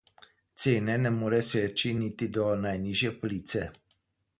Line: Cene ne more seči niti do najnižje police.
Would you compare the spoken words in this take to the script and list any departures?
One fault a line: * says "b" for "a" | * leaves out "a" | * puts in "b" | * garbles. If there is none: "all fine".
all fine